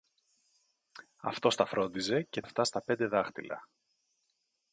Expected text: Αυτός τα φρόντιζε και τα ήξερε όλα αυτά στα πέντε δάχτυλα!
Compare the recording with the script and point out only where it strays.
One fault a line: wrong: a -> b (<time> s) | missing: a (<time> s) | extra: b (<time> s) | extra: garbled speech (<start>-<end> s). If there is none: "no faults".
missing: τα ήξερε όλα (2.4 s)